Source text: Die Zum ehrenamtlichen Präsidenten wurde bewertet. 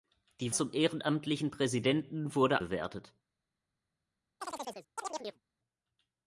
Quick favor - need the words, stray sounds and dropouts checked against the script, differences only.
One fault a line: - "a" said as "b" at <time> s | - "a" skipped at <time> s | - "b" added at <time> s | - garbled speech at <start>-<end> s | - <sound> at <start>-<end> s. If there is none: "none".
- chirp at 4.4-5.4 s